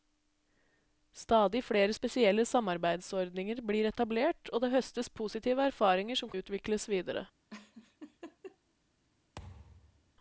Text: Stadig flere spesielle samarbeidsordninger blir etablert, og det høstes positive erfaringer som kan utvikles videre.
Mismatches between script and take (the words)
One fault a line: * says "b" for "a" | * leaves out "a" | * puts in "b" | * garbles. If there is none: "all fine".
* leaves out "kan"